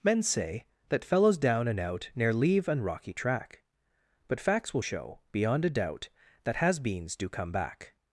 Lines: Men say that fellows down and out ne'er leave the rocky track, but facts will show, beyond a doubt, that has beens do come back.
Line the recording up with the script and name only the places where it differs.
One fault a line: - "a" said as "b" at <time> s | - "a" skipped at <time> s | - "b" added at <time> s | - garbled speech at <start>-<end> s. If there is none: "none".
- "the" said as "an" at 2.7 s